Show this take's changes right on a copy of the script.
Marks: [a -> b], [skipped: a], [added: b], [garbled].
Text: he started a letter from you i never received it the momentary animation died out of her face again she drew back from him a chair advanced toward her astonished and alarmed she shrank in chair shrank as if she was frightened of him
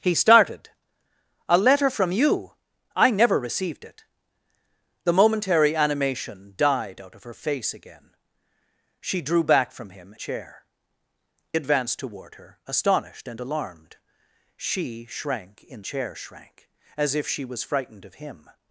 he started a letter from you i never received it the momentary animation died out of her face again she drew back from him a chair advanced toward her astonished and alarmed she shrank in chair shrank as if she was frightened of him